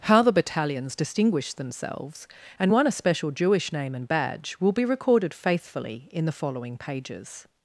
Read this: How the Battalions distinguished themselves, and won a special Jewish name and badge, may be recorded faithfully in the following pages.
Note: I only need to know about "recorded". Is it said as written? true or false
true